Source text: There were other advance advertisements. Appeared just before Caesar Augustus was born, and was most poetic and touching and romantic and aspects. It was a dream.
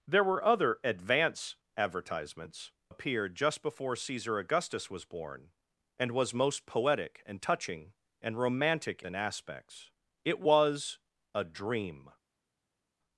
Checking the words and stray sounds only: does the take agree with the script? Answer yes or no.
yes